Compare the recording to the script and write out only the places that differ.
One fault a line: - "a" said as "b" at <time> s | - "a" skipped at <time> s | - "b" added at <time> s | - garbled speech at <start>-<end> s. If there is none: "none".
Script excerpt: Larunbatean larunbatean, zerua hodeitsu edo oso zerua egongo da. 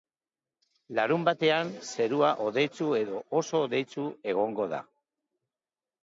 - "larunbatean" skipped at 1.7 s
- "zerua" said as "hodeitsu" at 3.6 s